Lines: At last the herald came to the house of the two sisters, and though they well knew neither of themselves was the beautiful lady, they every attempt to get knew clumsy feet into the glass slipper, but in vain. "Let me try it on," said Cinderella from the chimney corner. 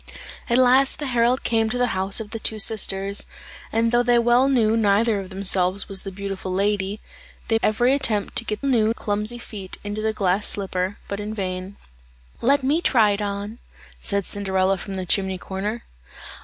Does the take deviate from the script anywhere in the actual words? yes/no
no